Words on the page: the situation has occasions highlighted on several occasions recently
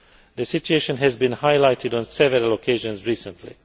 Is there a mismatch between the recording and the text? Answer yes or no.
yes